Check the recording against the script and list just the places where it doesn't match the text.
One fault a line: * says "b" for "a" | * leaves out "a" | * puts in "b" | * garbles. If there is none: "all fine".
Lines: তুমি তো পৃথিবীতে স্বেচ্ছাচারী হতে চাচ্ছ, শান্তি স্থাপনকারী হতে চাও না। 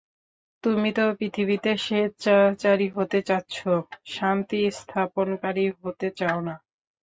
all fine